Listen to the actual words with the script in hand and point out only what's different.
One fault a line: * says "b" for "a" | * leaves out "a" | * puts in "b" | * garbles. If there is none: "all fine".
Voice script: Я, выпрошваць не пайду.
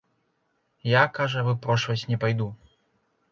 * puts in "кажа"